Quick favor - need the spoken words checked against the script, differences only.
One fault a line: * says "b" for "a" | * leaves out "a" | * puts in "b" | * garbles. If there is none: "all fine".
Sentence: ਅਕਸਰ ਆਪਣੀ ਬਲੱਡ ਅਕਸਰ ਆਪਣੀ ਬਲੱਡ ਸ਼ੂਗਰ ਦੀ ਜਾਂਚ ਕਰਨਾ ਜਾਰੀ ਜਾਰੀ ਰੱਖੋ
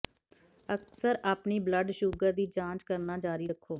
* leaves out "ਅਕਸਰ ਆਪਣੀ ਬਲੱਡ"
* leaves out "ਜਾਰੀ"